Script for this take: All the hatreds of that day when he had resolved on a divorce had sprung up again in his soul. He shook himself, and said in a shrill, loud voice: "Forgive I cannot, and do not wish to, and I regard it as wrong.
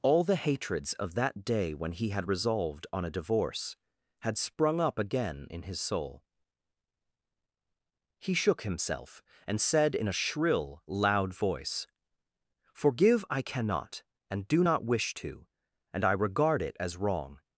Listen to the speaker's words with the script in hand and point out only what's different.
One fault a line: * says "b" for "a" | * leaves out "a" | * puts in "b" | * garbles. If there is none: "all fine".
all fine